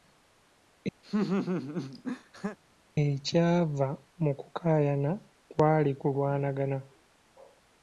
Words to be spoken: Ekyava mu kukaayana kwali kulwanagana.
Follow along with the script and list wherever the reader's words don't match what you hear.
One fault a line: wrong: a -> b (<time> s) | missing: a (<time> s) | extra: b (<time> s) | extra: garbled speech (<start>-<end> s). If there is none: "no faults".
no faults